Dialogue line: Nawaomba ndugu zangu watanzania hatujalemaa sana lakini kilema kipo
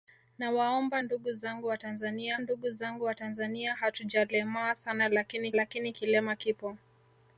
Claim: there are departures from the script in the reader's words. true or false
true